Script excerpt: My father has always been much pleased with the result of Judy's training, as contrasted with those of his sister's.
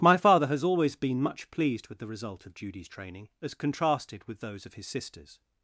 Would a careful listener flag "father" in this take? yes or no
no